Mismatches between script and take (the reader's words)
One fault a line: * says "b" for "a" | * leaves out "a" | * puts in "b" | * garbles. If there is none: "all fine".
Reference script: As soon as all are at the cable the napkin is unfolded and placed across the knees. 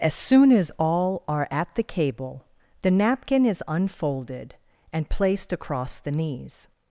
all fine